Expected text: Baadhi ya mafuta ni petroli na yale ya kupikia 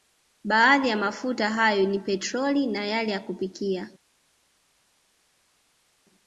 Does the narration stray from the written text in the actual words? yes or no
yes